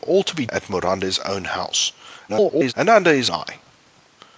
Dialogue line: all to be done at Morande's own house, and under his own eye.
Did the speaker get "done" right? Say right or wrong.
wrong